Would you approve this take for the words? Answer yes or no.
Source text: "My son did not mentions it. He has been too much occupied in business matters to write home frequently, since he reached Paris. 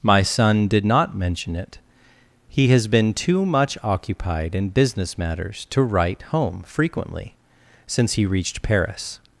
no